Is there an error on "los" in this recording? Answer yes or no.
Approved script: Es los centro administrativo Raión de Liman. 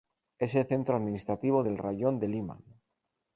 yes